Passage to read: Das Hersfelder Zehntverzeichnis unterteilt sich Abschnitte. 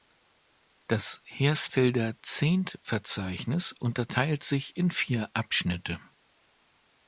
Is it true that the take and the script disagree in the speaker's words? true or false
true